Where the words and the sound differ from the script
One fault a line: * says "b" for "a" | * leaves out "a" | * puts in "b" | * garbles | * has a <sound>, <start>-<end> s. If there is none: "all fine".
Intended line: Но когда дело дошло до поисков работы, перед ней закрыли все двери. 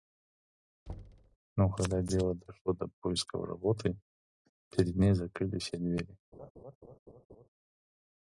* has a thud, 0.9-1.4 s
* has a laugh, 6.3-7.5 s